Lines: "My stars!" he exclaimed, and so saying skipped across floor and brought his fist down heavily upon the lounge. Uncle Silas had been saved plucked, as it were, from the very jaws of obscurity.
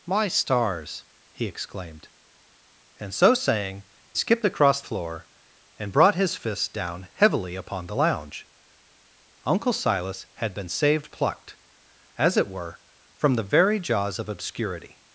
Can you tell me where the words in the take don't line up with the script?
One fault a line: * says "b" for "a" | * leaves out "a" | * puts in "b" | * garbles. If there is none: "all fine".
all fine